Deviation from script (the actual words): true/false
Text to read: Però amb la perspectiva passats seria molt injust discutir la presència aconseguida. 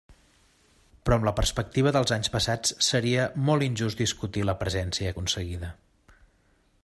true